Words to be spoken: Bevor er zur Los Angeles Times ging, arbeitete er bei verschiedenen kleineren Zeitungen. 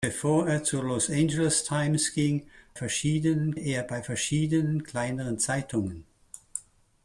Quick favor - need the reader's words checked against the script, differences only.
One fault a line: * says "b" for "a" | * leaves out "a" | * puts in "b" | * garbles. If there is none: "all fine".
* says "verschiedenen" for "arbeitete"